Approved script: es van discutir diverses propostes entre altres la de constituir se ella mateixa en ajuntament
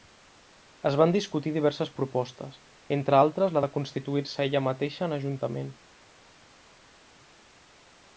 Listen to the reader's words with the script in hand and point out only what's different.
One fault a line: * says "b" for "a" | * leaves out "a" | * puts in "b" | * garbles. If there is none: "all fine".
all fine